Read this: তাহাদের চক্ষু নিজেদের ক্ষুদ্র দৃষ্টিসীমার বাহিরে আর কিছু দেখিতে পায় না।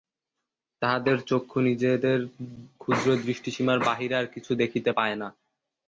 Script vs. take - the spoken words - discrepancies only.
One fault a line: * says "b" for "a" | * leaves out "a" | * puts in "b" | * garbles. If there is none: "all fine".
all fine